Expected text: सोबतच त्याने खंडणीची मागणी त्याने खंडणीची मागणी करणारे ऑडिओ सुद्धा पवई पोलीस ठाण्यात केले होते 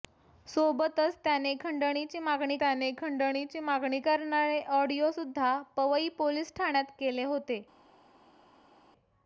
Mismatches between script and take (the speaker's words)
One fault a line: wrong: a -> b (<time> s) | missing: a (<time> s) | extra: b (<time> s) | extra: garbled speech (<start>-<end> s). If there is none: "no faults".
no faults